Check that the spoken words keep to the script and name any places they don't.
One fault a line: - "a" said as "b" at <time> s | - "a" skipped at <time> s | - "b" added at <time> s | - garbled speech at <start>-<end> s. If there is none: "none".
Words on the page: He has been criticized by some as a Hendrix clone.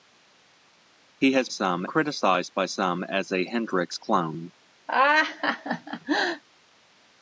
- "been" said as "some" at 1.5 s